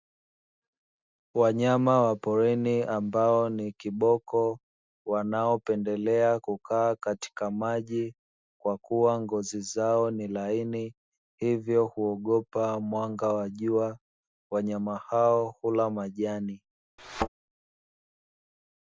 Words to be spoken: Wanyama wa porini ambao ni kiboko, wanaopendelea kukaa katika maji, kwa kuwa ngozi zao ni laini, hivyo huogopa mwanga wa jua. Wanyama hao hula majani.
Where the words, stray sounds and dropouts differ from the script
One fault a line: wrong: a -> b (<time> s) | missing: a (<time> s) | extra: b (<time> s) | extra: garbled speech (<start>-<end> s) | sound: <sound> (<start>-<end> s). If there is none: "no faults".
sound: thud (17.0-17.3 s)